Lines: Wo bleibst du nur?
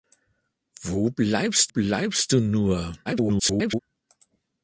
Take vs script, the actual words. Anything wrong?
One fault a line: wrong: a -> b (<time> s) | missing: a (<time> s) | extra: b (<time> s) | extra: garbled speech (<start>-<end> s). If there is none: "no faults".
extra: bleibst (1.7 s)
extra: garbled speech (3.1-3.8 s)